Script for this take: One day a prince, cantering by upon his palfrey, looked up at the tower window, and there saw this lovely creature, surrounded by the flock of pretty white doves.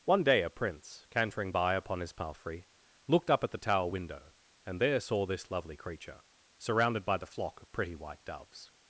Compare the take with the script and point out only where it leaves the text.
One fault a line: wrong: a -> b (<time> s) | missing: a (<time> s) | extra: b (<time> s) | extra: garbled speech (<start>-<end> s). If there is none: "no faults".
no faults